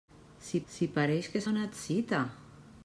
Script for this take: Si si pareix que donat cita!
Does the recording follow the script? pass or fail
pass